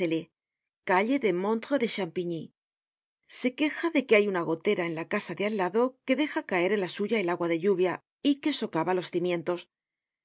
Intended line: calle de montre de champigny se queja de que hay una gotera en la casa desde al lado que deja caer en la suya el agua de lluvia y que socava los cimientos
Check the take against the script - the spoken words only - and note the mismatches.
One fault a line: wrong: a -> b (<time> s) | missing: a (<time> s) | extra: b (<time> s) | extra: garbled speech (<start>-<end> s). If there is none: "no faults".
wrong: desde -> de (5.3 s)